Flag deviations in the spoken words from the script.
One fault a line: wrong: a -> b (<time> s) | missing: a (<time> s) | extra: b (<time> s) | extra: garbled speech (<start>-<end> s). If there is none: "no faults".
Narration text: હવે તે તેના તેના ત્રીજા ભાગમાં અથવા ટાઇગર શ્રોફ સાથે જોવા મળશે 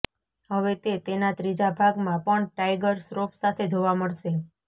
missing: તેના (1.3 s)
wrong: અથવા -> પણ (2.2 s)